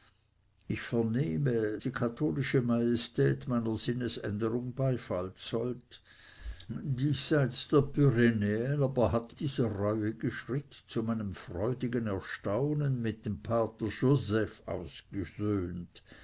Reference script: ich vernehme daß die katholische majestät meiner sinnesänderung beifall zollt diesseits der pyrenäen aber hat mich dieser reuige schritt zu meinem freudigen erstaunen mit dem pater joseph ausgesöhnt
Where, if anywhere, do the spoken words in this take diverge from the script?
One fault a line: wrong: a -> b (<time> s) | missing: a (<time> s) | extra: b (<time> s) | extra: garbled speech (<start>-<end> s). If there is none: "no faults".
missing: daß (1.8 s)
missing: mich (9.4 s)